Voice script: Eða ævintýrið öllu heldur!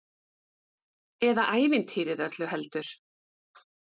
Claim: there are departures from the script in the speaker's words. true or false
false